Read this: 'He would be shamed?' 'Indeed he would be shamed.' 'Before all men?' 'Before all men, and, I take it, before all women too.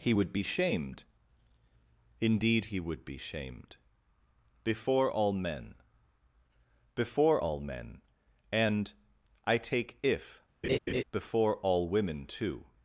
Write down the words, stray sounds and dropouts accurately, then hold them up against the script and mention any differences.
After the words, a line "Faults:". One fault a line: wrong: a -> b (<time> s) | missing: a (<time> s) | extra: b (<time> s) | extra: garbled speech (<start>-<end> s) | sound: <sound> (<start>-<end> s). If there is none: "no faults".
'He would be shamed?' 'Indeed he would be shamed.' 'Before all men?' 'Before all men, and, I take if, before all women too.
Faults:
wrong: it -> if (10.0 s)
sound: laugh (10.6-11.0 s)